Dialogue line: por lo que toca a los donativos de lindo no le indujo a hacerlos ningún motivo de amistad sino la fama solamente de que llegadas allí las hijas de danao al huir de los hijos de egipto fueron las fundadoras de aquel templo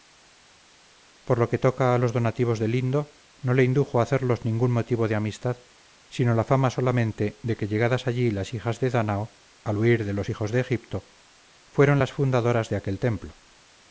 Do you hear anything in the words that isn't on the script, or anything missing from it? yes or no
no